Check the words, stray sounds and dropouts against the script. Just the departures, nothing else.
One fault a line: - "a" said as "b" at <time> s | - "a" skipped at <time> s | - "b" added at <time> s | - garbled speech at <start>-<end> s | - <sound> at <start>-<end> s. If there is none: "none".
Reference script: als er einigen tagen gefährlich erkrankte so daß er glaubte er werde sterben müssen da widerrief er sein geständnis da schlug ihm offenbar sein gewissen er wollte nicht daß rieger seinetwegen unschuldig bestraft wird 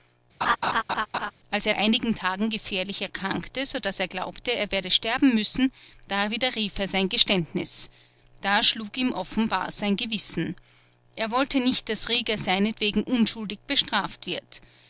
- laugh at 0.4-1.3 s